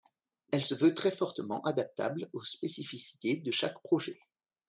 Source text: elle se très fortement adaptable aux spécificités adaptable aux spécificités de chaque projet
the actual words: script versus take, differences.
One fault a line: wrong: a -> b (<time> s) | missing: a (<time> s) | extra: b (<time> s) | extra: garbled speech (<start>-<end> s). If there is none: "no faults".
extra: veut (0.7 s)
missing: adaptable aux spécificités (3.4 s)